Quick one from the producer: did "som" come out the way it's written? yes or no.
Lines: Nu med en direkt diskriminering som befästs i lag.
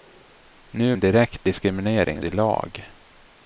no